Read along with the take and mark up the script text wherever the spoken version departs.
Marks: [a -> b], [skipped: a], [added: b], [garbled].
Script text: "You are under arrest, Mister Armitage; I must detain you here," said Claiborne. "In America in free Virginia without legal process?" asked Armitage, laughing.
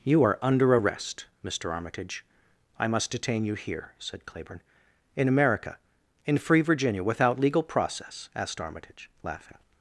"You are under arrest, Mister Armitage; I must detain you here," said Claiborne. "In America in free Virginia without legal process?" asked Armitage, laughing.